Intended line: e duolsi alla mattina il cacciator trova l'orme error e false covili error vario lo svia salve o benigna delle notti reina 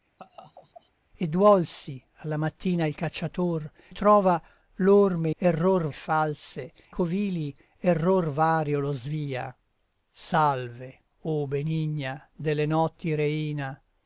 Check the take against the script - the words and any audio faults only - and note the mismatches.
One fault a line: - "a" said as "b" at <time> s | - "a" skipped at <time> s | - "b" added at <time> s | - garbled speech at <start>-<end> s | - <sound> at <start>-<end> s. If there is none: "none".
- laugh at 0.2-0.9 s